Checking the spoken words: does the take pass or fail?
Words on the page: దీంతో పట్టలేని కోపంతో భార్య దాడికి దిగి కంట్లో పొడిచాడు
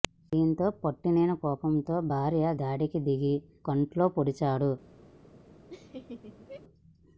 pass